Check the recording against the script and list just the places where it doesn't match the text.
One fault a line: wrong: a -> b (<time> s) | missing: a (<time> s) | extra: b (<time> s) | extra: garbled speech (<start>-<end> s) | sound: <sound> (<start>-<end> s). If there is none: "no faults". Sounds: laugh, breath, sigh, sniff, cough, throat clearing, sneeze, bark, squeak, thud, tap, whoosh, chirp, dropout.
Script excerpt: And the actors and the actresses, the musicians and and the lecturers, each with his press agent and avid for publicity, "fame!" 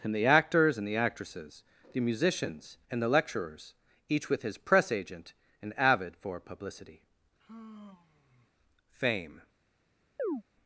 missing: and (3.0 s)
sound: sigh (7.4-8.5 s)
sound: chirp (10.2-10.4 s)